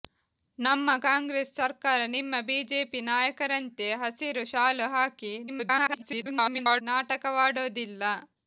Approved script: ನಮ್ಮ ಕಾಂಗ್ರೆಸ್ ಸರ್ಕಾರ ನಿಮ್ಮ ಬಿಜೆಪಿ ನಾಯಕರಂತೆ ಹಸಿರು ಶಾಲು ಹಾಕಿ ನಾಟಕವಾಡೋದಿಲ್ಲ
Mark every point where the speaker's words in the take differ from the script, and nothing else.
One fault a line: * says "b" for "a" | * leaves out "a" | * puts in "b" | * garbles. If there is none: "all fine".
* garbles